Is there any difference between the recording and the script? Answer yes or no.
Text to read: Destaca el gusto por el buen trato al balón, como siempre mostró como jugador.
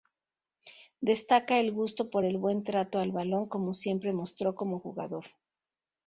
no